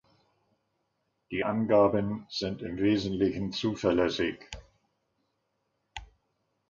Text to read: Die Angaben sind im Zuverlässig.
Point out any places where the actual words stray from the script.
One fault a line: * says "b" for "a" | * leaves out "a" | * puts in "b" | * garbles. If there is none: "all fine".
* puts in "Wesentlichen"